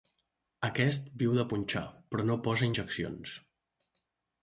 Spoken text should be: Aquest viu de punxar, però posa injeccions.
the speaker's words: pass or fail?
fail